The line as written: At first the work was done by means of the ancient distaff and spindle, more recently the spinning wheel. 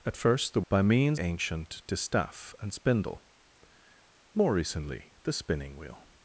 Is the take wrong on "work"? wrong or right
wrong